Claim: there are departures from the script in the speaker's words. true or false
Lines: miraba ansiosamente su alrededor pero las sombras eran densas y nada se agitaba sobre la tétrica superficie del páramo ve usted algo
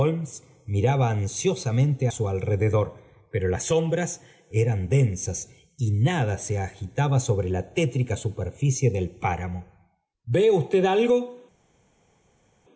false